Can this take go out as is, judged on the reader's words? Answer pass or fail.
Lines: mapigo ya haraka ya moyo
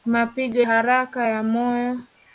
fail